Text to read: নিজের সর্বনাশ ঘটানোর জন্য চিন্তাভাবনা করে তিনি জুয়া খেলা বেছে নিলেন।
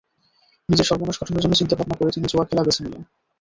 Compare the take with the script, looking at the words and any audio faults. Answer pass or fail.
pass